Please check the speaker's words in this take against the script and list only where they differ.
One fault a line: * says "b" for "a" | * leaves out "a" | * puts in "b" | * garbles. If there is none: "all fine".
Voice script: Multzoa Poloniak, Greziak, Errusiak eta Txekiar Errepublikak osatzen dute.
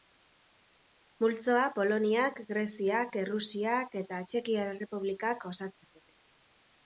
all fine